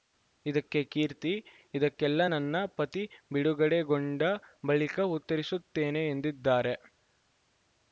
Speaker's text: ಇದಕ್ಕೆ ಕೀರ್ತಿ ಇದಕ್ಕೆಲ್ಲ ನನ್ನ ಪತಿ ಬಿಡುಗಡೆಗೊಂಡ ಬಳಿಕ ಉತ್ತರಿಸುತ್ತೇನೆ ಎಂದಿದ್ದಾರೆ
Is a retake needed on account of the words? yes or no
no